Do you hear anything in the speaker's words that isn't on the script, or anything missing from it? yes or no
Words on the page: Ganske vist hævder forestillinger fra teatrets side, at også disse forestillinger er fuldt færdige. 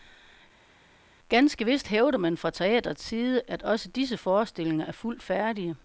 yes